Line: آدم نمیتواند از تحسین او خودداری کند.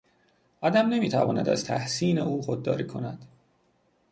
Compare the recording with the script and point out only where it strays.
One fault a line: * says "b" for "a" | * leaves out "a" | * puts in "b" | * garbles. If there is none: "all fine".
all fine